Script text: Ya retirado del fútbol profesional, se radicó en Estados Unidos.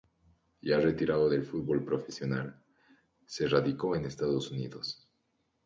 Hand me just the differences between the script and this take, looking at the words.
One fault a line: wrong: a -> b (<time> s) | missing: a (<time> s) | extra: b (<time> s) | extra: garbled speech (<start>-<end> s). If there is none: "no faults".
no faults